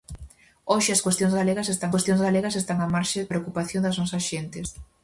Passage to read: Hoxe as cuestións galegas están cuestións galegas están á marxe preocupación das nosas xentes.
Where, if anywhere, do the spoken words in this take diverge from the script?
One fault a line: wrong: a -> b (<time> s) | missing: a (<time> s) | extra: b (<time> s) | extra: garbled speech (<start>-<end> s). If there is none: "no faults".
no faults